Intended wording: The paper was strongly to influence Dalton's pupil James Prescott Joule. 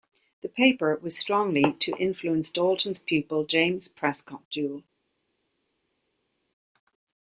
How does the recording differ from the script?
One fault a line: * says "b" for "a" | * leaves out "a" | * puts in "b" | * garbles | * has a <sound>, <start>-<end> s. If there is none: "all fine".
all fine